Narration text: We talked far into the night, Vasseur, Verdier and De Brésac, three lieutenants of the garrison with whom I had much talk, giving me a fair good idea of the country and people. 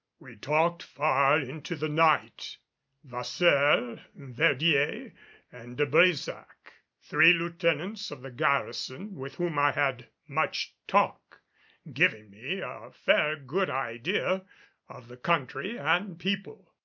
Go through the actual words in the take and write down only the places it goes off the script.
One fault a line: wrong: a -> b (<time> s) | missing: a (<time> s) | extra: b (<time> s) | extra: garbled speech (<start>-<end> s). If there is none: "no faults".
no faults